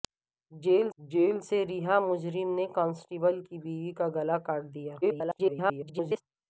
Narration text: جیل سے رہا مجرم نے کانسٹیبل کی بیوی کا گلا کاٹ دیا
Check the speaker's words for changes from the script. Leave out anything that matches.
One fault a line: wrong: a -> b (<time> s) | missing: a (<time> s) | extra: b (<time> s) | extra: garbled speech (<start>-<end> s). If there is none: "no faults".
extra: جیل (1.0 s)
extra: garbled speech (5.0-6.2 s)